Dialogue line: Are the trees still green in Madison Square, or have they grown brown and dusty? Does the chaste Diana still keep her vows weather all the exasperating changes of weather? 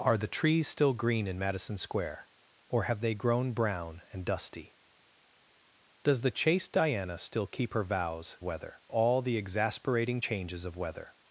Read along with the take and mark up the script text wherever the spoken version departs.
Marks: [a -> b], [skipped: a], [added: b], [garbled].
Are the trees still green in Madison Square, or have they grown brown and dusty? Does the chaste Diana still keep her vows weather all the exasperating changes of weather?